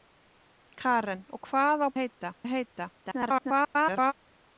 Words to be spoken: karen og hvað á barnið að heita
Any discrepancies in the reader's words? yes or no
yes